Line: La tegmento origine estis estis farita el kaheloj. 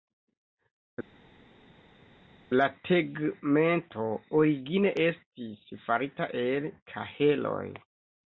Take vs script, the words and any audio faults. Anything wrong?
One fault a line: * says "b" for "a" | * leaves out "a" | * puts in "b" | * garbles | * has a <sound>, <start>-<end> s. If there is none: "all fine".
* leaves out "estis"